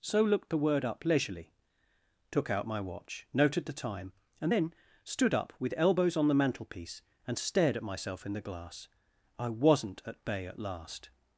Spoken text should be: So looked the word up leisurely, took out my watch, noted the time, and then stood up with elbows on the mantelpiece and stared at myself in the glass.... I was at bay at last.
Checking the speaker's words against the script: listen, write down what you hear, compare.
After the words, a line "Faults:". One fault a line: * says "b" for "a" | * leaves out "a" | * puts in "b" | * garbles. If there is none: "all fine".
So looked the word up leisurely, took out my watch, noted the time, and then stood up with elbows on the mantelpiece and stared at myself in the glass.... I wasn't at bay at last.
Faults:
* says "wasn't" for "was"